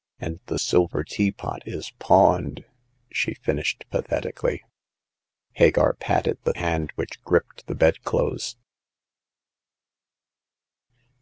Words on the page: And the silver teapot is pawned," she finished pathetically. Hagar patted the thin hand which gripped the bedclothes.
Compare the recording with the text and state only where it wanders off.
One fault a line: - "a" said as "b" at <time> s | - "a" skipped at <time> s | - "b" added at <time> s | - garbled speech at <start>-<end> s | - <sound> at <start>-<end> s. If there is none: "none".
- "thin" skipped at 6.5 s